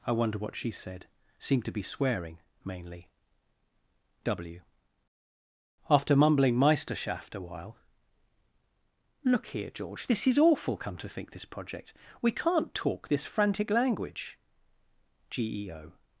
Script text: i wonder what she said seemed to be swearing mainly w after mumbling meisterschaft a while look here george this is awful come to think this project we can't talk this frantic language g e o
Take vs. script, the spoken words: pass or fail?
pass